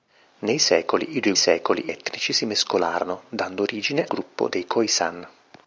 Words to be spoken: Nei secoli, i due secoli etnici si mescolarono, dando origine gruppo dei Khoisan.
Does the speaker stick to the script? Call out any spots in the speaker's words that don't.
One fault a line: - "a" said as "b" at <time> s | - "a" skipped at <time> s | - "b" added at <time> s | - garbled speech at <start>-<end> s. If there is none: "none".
none